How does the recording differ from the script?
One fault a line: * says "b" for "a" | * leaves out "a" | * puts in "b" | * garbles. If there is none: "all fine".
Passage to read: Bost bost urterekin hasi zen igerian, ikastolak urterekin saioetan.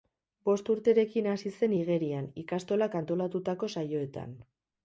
* leaves out "bost"
* says "antolatutako" for "urterekin"